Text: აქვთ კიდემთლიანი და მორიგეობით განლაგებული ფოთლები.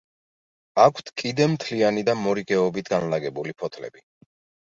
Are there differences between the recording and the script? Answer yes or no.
no